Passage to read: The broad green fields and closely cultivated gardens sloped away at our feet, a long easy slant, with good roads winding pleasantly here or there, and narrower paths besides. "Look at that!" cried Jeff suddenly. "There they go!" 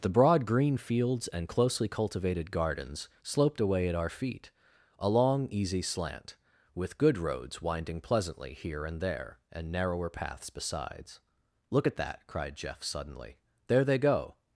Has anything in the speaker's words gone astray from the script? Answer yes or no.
yes